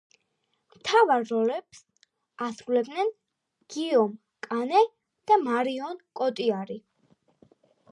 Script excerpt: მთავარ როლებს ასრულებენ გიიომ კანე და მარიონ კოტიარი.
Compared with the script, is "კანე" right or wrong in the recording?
right